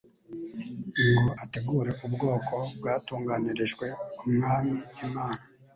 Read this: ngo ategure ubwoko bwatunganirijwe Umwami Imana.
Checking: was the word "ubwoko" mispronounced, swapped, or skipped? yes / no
no